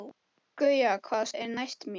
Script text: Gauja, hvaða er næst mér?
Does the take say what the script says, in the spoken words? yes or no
yes